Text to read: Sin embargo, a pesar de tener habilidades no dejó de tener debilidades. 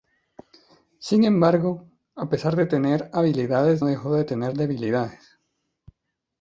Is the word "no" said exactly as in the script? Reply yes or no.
no